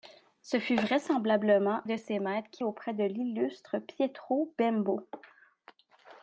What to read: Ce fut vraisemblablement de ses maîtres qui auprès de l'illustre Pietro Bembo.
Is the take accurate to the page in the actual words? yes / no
yes